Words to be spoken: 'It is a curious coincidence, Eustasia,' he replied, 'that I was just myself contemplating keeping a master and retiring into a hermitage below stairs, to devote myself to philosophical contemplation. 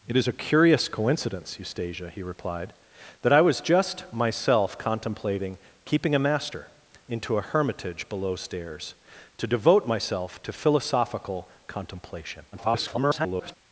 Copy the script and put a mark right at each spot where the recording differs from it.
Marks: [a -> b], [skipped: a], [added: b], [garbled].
'It is a curious coincidence, Eustasia,' he replied, 'that I was just myself contemplating keeping a master [skipped: and retiring] into a hermitage below stairs, to devote myself to philosophical contemplation. [garbled]